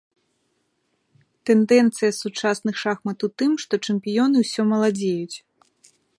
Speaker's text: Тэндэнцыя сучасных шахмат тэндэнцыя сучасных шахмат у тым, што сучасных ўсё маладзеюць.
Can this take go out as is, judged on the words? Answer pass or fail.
fail